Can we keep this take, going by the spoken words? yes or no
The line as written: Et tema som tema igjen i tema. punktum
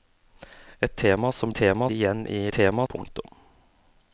yes